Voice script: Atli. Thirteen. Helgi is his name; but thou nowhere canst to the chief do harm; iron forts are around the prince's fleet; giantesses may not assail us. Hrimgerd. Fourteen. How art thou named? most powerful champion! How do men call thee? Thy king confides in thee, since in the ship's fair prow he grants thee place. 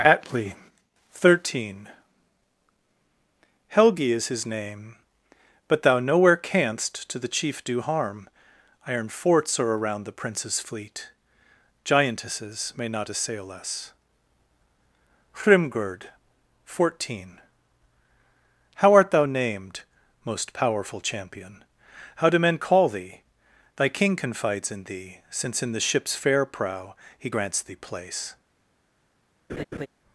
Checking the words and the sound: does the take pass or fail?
fail